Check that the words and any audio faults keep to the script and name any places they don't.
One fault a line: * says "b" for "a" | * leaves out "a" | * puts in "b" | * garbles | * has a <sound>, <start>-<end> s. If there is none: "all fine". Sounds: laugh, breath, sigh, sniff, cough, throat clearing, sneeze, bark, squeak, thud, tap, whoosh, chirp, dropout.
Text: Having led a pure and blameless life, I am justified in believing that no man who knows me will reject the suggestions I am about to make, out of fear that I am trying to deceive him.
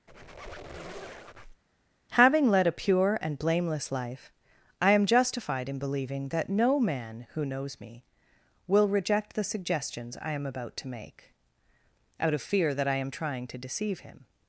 * has a squeak, 0.1-1.6 s